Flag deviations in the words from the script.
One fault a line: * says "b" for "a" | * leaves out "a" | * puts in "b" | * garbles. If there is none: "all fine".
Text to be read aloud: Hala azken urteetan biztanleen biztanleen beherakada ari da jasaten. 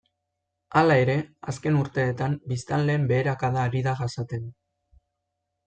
* puts in "ere"
* leaves out "biztanleen"